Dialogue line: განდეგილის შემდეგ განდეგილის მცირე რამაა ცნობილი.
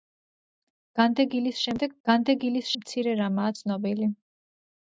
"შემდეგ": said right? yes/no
yes